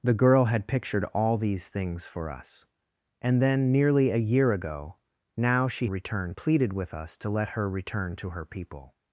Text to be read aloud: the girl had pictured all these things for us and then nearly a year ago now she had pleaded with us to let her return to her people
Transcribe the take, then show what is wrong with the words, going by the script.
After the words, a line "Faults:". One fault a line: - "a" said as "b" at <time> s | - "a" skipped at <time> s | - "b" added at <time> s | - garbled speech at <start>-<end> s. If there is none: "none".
the girl had pictured all these things for us and then nearly a year ago now she return pleaded with us to let her return to her people
Faults:
- "had" said as "return" at 5.8 s